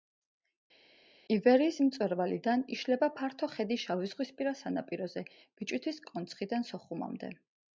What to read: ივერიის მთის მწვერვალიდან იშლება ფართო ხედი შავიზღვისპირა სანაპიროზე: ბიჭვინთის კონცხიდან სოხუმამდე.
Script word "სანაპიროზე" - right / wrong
right